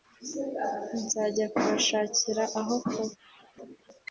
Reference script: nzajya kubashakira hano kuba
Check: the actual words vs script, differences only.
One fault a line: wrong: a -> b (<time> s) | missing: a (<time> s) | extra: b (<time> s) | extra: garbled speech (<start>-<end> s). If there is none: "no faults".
wrong: hano -> aho (2.6 s)